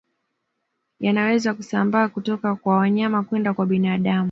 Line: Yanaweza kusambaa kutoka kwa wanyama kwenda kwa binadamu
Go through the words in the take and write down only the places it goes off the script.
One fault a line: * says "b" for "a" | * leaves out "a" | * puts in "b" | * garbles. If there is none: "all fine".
all fine